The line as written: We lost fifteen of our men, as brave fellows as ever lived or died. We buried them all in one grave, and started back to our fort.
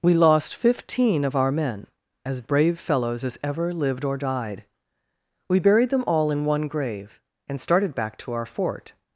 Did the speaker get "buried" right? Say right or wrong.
right